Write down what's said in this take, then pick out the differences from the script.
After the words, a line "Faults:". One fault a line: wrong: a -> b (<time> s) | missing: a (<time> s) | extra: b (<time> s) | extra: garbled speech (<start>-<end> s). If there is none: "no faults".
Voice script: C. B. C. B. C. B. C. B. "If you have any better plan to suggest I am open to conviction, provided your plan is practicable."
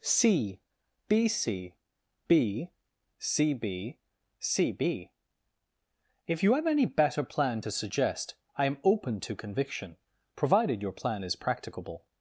C. B. C. B. C. B. C. B. "If you have any better plan to suggest I am open to conviction, provided your plan is practicable."
Faults:
no faults